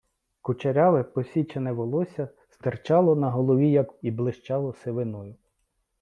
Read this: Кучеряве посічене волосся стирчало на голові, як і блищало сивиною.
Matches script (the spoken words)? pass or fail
pass